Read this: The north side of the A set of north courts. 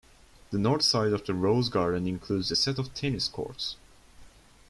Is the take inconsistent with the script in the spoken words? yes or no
yes